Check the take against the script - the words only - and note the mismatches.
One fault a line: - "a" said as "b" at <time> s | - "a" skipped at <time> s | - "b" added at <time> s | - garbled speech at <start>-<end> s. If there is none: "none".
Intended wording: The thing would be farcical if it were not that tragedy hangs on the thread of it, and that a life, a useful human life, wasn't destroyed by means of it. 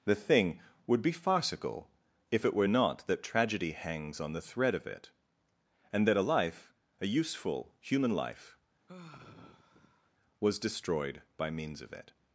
- "wasn't" said as "was" at 10.4 s